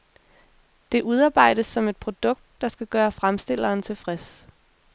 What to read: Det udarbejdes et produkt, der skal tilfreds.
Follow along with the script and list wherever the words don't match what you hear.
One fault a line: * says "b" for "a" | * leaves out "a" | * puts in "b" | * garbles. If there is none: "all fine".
* puts in "som"
* puts in "gøre fremstilleren"